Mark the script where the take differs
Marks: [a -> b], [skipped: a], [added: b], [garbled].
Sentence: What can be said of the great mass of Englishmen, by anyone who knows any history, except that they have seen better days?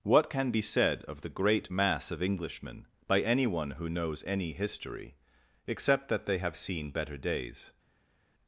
What can be said of the great mass of Englishmen, by anyone who knows any history, except that they have seen better days?